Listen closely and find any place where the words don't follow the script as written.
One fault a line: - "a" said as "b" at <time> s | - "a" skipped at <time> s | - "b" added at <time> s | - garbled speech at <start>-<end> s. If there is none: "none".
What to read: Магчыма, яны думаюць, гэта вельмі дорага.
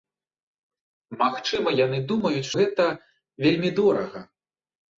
none